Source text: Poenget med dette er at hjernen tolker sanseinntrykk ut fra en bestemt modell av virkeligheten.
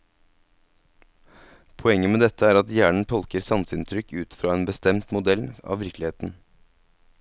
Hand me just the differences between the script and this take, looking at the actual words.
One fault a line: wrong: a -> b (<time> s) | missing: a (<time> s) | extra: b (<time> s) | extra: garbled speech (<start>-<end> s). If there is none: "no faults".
no faults